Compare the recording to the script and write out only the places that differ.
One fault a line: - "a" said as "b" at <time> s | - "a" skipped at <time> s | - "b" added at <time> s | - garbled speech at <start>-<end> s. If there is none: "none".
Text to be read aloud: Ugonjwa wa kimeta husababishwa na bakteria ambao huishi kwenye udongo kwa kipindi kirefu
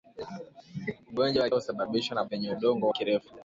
- "kimeta" skipped at 1.5 s
- "bakteria ambao huishi" skipped at 2.2 s
- "kwa kipindi" skipped at 2.9 s